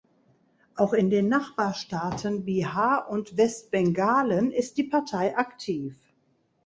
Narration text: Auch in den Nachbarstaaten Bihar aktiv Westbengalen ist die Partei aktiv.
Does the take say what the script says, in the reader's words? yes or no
no